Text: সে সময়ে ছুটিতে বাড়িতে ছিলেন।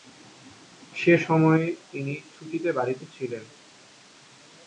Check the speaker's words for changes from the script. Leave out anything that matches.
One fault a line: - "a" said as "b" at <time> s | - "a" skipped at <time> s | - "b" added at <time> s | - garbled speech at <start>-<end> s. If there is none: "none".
- "তিনি" added at 1.9 s